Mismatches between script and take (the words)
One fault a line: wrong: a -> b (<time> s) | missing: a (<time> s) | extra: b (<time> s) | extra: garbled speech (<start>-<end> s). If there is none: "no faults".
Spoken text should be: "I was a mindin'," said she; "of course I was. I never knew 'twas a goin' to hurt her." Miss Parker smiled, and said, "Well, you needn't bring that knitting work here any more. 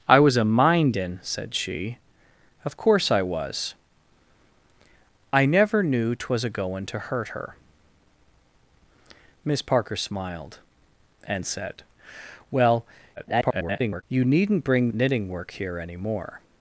extra: garbled speech (13.2-14.0 s)
missing: that (14.9 s)